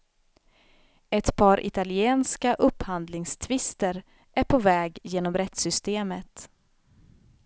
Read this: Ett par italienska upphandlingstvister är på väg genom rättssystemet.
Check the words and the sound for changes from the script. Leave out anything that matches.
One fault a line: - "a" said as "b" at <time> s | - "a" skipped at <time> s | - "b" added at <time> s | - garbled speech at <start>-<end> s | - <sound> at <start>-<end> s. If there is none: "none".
none